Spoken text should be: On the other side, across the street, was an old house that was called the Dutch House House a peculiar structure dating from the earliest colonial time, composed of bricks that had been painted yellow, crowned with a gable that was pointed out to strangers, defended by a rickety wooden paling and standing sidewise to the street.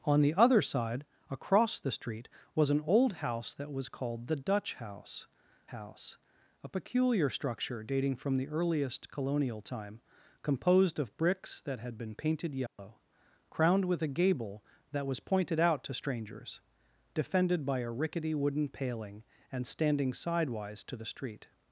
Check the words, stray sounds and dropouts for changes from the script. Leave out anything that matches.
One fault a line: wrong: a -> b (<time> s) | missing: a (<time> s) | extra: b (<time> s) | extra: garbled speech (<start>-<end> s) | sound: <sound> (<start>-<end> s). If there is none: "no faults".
sound: dropout (12.7-12.8 s)